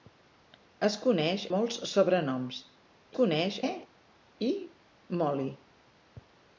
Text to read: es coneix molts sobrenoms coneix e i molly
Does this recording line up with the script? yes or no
yes